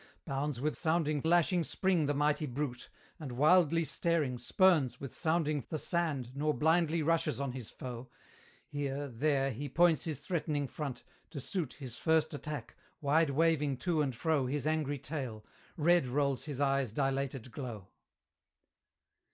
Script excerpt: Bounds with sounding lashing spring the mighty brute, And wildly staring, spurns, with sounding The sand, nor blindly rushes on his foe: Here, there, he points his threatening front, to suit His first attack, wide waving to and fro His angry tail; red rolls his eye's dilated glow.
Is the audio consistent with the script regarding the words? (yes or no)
yes